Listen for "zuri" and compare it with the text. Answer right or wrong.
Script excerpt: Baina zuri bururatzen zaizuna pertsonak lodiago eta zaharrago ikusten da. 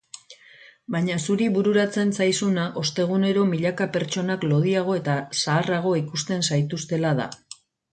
right